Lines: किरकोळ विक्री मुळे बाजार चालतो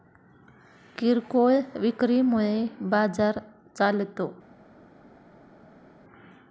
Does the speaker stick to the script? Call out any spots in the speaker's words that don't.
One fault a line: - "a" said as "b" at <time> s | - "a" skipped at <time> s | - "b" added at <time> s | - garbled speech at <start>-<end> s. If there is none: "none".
none